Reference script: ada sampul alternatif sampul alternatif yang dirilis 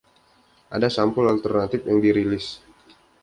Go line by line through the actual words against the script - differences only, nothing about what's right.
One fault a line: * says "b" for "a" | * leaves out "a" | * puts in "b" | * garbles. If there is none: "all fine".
* leaves out "sampul alternatif"